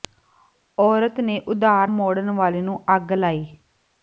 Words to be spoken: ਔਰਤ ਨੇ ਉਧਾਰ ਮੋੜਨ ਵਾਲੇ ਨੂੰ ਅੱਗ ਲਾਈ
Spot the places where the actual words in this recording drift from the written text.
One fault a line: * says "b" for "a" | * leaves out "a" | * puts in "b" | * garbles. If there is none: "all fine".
all fine